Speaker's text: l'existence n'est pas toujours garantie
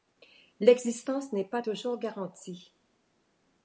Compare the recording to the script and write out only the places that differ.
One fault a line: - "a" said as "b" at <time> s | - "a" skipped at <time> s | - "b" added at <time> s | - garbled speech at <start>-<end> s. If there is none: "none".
none